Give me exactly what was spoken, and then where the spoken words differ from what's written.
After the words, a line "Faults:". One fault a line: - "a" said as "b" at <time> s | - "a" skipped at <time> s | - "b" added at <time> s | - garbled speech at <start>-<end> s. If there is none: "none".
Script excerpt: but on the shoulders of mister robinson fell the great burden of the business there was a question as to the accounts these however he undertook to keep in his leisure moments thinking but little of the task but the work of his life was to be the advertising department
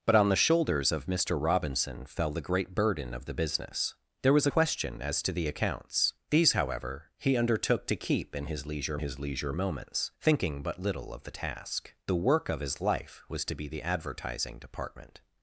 but on the shoulders of mister robinson fell the great burden of the business there was question as to the accounts these however he undertook to keep in his leisure his leisure moments thinking but little of the task the work of his life was to be the advertising department
Faults:
- "a" skipped at 4.5 s
- "his leisure" added at 9.0 s
- "but" skipped at 12.0 s